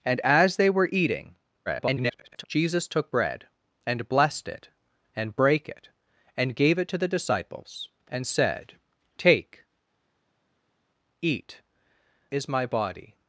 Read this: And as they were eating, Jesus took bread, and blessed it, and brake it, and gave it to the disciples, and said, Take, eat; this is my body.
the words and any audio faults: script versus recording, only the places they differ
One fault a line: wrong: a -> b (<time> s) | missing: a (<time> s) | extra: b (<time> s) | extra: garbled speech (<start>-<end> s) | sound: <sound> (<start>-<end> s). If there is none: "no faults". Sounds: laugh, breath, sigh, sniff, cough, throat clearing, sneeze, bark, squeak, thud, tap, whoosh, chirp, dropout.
extra: garbled speech (1.7-2.4 s)
missing: this (11.6 s)